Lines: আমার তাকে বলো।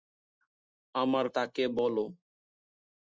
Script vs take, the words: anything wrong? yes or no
no